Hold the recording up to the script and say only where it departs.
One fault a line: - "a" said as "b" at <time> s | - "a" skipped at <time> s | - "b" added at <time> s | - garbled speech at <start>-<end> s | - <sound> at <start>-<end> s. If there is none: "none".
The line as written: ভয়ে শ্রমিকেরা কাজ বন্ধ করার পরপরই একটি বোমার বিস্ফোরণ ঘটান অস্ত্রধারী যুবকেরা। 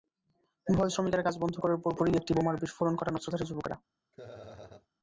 - laugh at 4.1-4.9 s